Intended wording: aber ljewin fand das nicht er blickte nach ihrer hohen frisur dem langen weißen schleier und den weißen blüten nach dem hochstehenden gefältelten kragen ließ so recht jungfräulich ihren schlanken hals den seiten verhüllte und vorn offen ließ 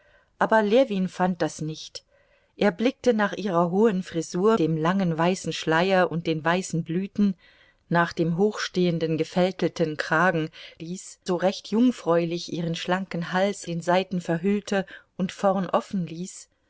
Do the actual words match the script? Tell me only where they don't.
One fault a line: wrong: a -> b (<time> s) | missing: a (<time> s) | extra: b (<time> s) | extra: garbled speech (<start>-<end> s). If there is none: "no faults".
no faults